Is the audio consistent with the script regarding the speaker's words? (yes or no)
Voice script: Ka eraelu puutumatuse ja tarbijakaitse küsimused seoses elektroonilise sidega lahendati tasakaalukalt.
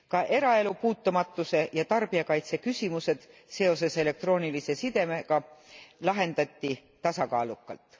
yes